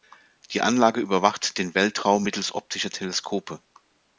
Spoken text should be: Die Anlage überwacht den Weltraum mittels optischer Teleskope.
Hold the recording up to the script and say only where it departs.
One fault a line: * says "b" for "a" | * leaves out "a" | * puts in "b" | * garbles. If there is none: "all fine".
all fine